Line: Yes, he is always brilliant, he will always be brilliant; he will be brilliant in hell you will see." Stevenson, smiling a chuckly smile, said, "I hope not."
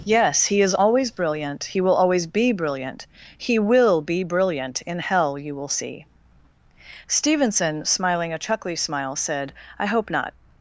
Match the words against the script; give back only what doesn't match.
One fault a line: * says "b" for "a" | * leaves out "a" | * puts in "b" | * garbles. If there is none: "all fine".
all fine